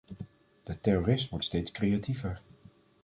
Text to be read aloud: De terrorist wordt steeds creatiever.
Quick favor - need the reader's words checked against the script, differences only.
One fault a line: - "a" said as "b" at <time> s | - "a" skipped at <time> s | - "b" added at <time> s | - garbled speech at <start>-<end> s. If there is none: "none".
none